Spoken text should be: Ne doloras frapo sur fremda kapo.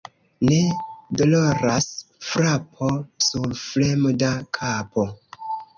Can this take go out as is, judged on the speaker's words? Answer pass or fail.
pass